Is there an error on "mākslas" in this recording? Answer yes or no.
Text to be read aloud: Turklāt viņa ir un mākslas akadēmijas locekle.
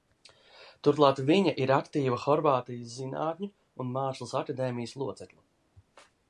no